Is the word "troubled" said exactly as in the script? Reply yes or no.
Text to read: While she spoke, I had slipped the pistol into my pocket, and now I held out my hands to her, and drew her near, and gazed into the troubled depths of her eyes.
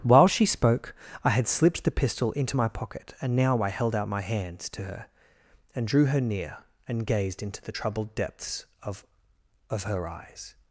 yes